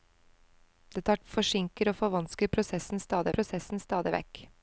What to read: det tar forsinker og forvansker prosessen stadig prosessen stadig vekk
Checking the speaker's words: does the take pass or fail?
pass